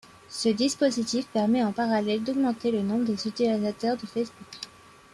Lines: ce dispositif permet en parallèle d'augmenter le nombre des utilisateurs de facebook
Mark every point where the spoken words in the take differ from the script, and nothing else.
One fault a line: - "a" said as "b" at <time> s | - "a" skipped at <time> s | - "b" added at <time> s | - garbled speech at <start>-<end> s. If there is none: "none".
none